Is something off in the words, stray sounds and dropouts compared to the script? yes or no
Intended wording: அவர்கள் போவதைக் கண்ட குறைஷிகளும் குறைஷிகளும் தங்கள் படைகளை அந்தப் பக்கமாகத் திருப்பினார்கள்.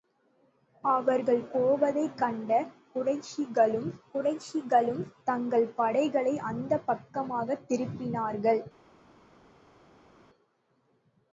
no